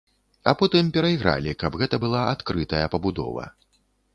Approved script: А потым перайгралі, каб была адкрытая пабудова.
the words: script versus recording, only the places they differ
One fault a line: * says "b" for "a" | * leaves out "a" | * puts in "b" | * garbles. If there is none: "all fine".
* puts in "гэта"